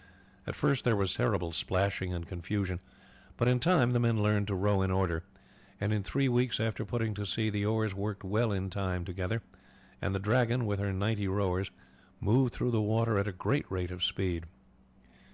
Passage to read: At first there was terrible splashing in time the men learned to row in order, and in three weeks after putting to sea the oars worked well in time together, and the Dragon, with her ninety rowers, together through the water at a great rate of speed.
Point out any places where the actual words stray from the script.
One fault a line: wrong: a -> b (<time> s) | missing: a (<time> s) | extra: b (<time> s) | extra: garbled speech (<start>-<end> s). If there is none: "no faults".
extra: and confusion but (2.1 s)
wrong: together -> moved (12.2 s)